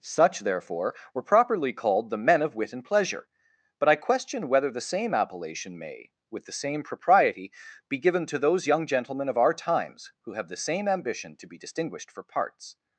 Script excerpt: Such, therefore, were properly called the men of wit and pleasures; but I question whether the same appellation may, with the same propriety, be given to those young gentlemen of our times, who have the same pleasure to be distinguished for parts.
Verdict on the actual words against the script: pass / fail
fail